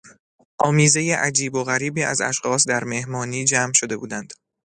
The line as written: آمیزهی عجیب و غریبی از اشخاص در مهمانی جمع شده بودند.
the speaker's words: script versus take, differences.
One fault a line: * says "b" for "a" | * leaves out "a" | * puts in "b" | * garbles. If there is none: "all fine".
all fine